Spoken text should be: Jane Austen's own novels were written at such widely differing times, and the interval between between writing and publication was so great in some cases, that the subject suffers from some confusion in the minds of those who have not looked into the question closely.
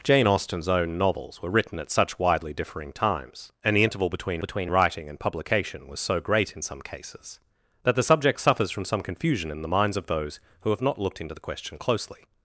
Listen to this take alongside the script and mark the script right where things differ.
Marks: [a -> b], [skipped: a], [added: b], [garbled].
Jane Austen's own novels were written at such widely differing times, and the interval between between writing and publication was so great in some cases, that the subject suffers from some confusion in the minds of those who have not looked into the question closely.